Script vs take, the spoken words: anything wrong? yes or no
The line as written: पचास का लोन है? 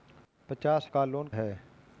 no